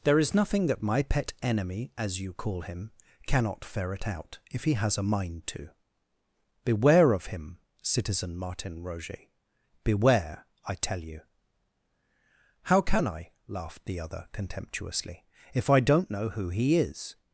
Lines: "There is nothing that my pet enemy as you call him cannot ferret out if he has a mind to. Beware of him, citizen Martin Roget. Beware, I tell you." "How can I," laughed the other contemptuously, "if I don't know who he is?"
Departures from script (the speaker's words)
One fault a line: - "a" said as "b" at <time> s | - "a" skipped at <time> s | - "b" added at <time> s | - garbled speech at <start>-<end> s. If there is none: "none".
none